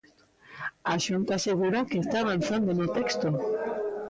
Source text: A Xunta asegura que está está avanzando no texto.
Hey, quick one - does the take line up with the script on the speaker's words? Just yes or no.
no